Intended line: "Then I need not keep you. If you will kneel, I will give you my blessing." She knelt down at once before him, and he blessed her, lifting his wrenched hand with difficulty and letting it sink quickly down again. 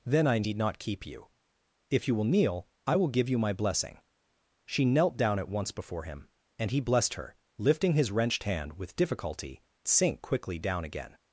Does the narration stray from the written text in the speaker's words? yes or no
yes